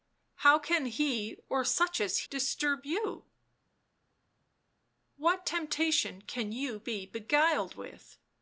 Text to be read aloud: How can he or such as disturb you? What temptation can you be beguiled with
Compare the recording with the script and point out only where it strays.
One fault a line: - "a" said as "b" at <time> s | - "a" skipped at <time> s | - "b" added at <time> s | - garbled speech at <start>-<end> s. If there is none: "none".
none